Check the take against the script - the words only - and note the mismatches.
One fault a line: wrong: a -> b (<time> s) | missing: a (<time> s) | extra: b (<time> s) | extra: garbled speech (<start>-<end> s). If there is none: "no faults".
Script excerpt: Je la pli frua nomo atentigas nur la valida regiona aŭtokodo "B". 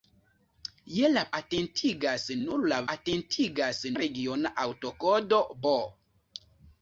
missing: pli frua nomo (1.2 s)
wrong: valida -> atentigas (2.9 s)